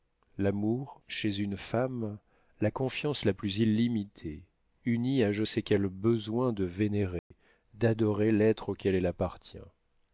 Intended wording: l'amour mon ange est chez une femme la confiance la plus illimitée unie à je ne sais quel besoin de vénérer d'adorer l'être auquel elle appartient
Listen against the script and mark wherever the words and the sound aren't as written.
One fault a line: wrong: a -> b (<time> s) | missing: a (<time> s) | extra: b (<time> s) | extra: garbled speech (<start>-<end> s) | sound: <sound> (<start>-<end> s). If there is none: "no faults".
missing: mon ange est (1.0 s)
missing: ne (5.4 s)
sound: dropout (7.2-7.3 s)